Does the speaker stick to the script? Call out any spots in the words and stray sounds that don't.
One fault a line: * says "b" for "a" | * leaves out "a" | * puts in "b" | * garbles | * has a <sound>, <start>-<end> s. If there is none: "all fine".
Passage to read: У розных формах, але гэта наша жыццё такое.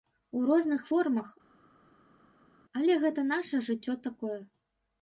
all fine